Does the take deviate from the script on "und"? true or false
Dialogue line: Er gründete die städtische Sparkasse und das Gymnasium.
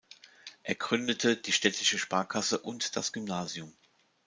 false